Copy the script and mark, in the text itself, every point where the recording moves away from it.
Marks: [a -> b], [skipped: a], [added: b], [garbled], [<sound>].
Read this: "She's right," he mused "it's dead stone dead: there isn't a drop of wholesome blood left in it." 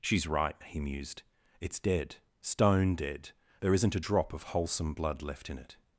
"She's right," he mused "it's dead stone dead: there isn't a drop of wholesome blood left in it."